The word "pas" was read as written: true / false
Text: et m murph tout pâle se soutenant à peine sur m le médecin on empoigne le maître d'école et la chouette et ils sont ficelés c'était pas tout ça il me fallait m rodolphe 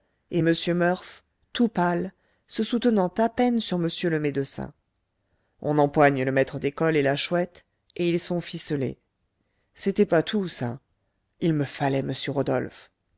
true